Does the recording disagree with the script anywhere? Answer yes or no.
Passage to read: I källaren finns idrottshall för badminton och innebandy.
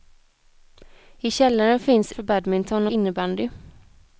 yes